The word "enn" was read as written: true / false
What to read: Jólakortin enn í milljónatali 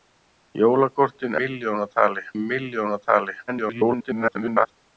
false